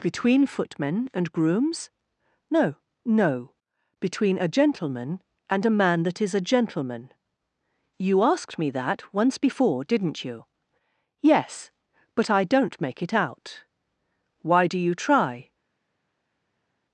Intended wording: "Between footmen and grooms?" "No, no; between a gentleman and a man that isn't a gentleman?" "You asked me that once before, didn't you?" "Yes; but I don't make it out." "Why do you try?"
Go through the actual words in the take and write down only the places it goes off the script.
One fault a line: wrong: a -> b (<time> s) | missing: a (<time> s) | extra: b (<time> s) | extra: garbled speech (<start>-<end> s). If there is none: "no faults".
wrong: isn't -> is (6.2 s)